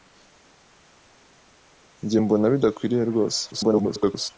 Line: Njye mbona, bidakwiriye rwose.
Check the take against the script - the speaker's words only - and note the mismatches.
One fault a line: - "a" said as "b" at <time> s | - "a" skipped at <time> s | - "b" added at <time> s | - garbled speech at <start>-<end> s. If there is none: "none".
- garbled speech at 3.5-4.3 s